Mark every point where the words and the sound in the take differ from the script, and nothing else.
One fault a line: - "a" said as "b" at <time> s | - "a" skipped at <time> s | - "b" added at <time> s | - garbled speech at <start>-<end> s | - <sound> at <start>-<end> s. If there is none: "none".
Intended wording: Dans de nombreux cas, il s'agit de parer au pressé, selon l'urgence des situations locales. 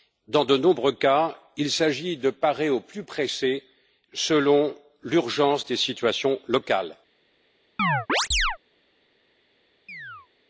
- "plus" added at 2.8 s
- chirp at 7.8-8.6 s
- chirp at 9.9-10.3 s